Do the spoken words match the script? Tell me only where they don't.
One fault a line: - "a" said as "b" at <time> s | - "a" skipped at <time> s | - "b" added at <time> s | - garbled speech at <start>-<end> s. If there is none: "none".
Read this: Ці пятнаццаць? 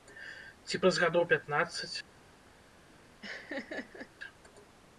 - "праз гадоў" added at 0.8 s